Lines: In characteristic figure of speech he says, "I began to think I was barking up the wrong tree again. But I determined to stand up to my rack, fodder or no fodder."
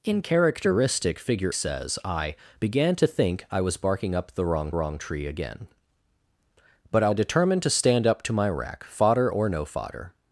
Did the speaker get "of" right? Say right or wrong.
wrong